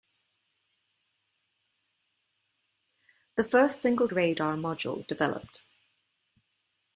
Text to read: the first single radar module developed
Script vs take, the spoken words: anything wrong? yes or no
no